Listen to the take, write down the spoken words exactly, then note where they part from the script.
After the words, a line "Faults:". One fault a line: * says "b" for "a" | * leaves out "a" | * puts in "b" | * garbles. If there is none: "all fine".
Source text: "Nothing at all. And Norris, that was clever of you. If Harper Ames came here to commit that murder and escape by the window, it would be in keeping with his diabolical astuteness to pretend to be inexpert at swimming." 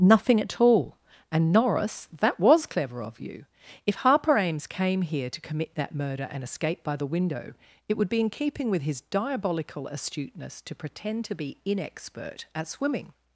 "Nothing at all. And Norris, that was clever of you. If Harper Ames came here to commit that murder and escape by the window, it would be in keeping with his diabolical astuteness to pretend to be inexpert at swimming."
Faults:
all fine